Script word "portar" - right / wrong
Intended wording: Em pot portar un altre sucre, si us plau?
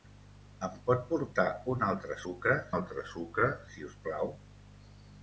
right